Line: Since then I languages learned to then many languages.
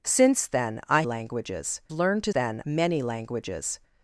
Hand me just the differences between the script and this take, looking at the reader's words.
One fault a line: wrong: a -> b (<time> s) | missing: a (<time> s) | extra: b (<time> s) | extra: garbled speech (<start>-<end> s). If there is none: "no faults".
no faults